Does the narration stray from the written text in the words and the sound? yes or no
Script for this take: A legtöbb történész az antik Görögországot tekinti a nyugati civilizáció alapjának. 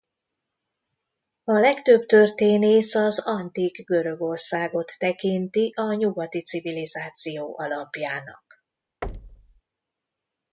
yes